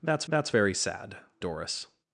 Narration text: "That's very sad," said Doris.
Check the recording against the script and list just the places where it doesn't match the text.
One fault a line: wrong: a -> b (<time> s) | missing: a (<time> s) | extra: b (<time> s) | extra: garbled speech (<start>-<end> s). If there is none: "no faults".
extra: that's (0.3 s)
missing: said (1.2 s)